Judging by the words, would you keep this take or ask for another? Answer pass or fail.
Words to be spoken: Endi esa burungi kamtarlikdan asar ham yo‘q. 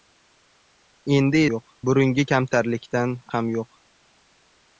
fail